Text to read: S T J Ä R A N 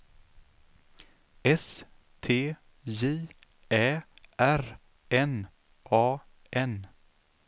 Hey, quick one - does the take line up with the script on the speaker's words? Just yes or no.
no